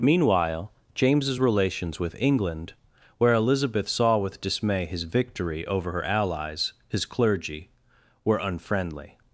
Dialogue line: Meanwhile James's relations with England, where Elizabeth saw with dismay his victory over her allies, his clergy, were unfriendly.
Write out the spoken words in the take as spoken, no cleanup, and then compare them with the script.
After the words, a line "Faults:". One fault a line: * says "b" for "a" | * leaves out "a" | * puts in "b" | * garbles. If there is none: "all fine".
Meanwhile James's relations with England, where Elizabeth saw with dismay his victory over her allies, his clergy, were unfriendly.
Faults:
all fine